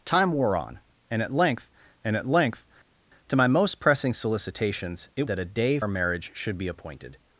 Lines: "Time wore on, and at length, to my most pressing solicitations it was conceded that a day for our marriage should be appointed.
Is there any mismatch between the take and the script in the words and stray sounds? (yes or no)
yes